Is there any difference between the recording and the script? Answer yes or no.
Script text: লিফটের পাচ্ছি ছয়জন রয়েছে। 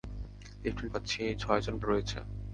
no